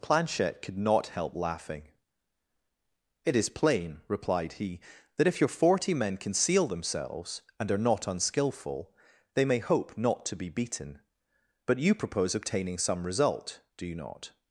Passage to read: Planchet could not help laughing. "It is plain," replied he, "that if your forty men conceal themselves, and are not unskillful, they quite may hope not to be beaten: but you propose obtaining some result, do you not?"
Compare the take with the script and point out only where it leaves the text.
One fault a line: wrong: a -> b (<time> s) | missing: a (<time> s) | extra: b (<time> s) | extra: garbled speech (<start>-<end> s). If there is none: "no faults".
missing: quite (9.4 s)